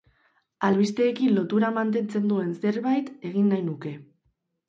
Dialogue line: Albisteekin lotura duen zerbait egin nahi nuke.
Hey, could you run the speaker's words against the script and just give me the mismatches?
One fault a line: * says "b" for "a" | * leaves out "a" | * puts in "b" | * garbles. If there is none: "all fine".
* puts in "mantentzen"